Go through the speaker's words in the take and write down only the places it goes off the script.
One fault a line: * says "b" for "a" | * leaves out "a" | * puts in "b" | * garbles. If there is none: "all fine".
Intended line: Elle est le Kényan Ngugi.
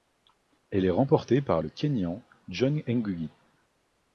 * puts in "remportée par"
* puts in "John"